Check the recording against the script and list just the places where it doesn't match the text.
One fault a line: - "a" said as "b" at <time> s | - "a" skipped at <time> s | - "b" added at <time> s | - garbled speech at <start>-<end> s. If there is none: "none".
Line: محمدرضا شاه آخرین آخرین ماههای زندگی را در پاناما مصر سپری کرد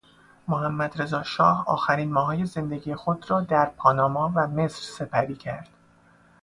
- "آخرین" skipped at 2.1 s
- "خود" added at 2.9 s
- "و" added at 4.4 s